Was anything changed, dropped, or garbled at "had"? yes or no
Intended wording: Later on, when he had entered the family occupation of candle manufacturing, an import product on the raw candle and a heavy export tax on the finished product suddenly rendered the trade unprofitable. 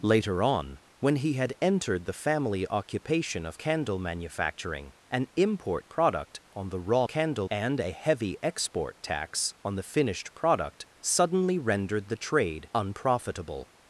no